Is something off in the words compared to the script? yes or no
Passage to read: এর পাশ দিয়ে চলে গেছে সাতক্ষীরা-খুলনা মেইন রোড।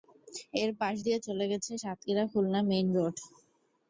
no